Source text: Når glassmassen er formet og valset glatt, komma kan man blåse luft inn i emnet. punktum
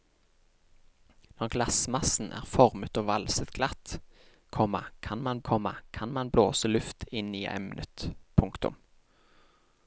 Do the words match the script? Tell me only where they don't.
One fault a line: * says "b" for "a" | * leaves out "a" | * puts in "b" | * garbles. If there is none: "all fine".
* puts in "komma kan man"